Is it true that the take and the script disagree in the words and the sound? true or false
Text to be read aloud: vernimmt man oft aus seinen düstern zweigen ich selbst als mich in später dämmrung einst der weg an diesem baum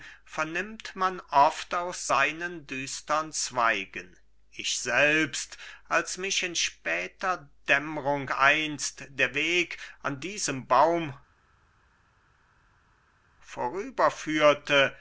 false